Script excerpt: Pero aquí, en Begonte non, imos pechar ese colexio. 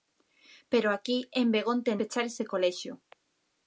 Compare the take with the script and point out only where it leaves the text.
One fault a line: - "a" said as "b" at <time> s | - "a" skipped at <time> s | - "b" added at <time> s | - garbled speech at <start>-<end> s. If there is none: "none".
- "non imos" skipped at 1.9 s